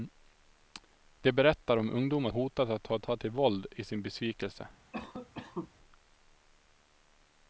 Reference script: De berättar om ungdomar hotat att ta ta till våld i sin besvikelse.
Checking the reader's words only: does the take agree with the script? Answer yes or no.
yes